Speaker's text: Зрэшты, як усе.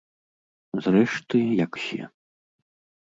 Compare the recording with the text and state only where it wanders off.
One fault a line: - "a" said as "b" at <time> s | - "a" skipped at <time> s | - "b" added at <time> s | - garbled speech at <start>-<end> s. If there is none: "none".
none